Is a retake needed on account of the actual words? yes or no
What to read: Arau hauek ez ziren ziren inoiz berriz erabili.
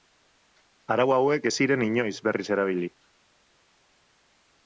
yes